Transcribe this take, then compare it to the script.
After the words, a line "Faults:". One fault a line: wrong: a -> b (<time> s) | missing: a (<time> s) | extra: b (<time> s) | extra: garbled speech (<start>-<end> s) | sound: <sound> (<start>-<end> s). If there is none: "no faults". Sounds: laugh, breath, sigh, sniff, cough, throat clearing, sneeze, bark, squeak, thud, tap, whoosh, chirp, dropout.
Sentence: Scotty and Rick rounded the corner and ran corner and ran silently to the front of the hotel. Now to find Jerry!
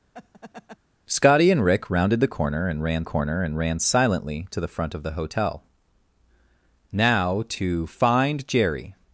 Scotty and Rick rounded the corner and ran corner and ran silently to the front of the hotel. Now to find Jerry!
Faults:
sound: laugh (0.1-0.8 s)